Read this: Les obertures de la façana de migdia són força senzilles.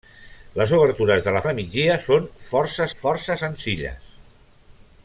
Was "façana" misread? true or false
true